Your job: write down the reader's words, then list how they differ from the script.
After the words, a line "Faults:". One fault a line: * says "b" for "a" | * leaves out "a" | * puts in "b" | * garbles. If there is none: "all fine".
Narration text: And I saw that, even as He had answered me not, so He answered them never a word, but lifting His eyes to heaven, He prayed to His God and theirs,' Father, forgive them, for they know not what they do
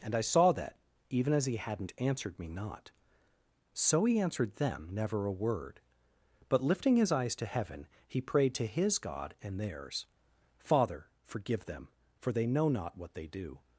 And I saw that, even as He hadn't answered me not, so He answered them never a word, but lifting His eyes to heaven, He prayed to His God and theirs,' Father, forgive them, for they know not what they do
Faults:
* says "hadn't" for "had"